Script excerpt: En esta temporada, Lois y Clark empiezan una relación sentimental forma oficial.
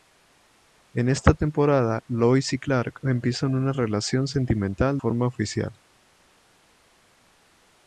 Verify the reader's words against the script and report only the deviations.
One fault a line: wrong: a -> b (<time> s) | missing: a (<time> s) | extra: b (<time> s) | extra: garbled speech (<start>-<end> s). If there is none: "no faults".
no faults